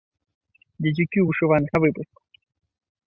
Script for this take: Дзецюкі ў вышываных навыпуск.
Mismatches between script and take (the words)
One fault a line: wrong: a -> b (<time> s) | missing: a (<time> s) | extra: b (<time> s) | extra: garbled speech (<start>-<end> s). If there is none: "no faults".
no faults